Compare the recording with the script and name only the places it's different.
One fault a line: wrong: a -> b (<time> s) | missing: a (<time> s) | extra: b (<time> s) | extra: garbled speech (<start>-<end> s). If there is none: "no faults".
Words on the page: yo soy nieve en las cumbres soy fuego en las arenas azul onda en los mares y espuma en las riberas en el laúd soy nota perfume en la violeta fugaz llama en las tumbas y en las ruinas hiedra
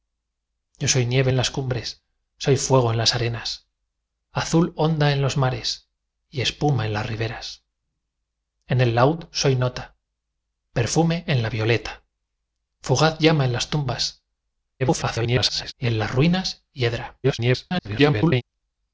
extra: garbled speech (14.8-15.7 s)
extra: garbled speech (17.2-18.4 s)